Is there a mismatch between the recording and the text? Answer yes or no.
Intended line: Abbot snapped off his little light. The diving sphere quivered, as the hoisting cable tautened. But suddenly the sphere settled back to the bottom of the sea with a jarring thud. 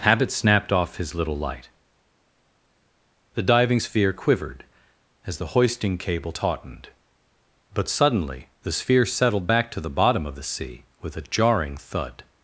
yes